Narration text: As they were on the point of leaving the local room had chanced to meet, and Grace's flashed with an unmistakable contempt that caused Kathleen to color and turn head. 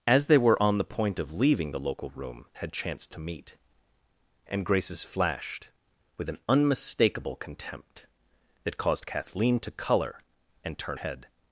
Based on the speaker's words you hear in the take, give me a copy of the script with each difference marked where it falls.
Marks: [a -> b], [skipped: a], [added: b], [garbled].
As they were on the point of leaving the local room had chanced to meet, and Grace's flashed with an unmistakable contempt that caused Kathleen to color and turn head.